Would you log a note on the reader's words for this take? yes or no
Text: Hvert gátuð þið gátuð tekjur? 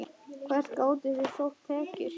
yes